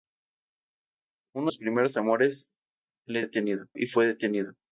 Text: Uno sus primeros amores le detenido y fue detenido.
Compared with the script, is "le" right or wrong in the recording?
right